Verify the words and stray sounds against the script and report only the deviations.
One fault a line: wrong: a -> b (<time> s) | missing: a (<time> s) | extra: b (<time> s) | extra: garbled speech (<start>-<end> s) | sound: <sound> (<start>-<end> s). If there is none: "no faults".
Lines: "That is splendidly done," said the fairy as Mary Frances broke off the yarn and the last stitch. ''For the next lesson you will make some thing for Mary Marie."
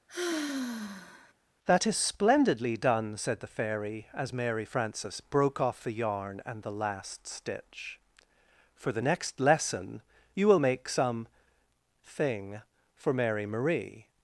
sound: sigh (0.1-1.3 s)